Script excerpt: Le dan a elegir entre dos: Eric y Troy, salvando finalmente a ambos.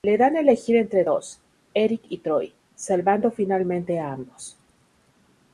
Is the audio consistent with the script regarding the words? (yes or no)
yes